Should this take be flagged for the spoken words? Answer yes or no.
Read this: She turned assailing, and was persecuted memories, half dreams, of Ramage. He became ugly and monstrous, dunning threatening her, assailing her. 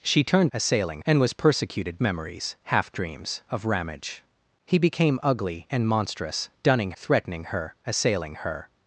no